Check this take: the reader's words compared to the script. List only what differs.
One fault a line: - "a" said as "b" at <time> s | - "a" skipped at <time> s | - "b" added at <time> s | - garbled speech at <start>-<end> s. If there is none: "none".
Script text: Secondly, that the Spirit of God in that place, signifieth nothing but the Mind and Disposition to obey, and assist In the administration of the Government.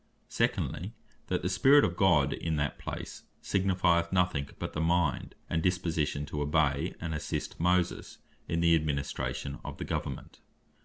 - "Moses" added at 7.6 s